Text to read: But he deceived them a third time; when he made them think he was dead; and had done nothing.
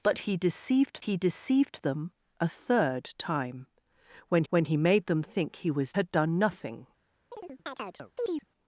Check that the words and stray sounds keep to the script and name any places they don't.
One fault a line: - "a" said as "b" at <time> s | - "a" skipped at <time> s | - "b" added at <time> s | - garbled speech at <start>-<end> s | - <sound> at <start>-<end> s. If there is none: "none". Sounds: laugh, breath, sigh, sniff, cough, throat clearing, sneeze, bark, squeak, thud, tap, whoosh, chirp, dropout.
- "he deceived" added at 1.0 s
- "when" added at 4.5 s
- "dead and" skipped at 5.9 s
- chirp at 7.3-8.5 s